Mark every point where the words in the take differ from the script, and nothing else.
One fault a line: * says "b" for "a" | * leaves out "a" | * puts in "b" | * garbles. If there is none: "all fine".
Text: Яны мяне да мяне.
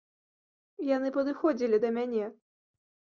* says "падыходзілі" for "мяне"